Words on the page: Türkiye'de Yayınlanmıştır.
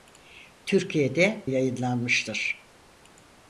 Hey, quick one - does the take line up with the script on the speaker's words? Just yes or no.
yes